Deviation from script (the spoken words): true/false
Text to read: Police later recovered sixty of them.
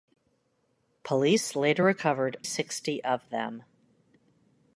false